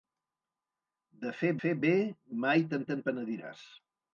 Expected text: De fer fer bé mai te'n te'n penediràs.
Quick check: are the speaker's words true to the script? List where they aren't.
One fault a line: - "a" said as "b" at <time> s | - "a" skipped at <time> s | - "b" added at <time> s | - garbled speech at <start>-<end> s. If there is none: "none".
none